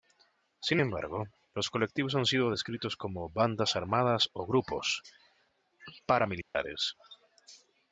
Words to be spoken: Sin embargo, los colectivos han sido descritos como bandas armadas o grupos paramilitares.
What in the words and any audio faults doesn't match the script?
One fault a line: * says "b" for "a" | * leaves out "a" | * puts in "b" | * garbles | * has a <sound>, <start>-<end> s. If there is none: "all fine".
* has a dropout, 6.4-6.6 s